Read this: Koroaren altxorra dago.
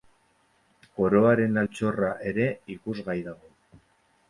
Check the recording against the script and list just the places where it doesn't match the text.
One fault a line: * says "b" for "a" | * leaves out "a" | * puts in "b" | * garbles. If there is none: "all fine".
* puts in "ere ikusgai"